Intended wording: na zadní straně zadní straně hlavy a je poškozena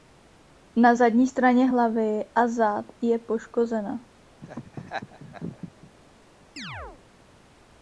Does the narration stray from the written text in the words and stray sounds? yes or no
yes